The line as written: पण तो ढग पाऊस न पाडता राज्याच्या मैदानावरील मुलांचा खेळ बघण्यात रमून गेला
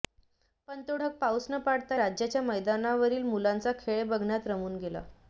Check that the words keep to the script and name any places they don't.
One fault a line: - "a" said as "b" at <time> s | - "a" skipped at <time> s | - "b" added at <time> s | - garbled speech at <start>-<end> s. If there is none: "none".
none